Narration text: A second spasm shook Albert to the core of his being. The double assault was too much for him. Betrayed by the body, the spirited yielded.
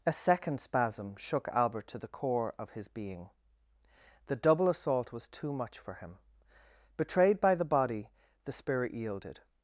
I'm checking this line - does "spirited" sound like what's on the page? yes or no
no